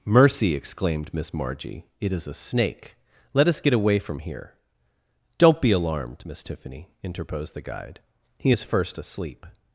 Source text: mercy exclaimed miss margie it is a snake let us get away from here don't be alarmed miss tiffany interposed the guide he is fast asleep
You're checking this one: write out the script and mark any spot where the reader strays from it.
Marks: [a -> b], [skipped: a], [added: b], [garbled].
mercy exclaimed miss margie it is a snake let us get away from here don't be alarmed miss tiffany interposed the guide he is [fast -> first] asleep